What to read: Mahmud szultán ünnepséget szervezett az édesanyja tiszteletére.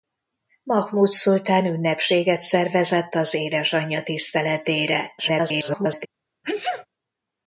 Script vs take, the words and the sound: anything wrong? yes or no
yes